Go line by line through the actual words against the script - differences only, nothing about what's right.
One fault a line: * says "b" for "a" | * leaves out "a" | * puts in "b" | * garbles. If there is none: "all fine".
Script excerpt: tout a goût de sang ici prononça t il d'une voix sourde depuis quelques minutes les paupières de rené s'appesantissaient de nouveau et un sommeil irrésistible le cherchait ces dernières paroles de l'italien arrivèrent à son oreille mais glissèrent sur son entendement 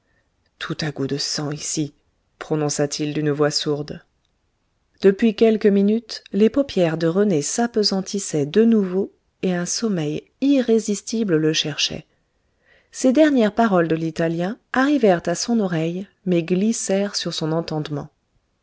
all fine